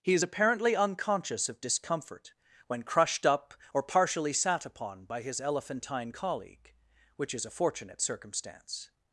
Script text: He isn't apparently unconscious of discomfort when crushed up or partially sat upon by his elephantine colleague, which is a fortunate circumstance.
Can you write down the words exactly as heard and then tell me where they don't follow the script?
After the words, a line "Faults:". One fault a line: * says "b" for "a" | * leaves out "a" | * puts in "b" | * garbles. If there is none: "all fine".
He is apparently unconscious of discomfort when crushed up or partially sat upon by his elephantine colleague, which is a fortunate circumstance.
Faults:
* says "is" for "isn't"